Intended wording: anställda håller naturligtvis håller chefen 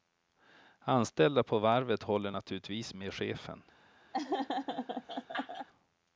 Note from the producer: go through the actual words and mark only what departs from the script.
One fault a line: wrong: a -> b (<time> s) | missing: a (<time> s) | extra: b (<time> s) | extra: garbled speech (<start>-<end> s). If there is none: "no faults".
extra: på varvet (1.4 s)
wrong: håller -> med (2.9 s)